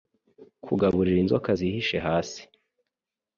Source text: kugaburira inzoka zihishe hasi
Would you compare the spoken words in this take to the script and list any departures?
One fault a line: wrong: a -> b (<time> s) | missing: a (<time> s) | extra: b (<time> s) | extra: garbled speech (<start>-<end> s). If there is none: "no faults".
no faults